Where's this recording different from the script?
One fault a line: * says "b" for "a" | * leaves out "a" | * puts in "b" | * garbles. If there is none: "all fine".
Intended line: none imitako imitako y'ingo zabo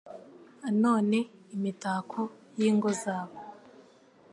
* leaves out "imitako"